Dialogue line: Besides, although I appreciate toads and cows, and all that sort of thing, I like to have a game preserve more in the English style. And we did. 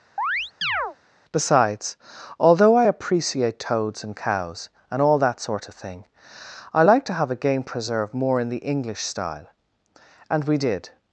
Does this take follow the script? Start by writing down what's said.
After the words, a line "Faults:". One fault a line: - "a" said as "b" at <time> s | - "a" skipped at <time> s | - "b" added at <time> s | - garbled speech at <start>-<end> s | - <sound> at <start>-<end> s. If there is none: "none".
Besides, although I appreciate toads and cows, and all that sort of thing, I like to have a game preserve more in the English style. And we did.
Faults:
- chirp at 0.2-1.0 s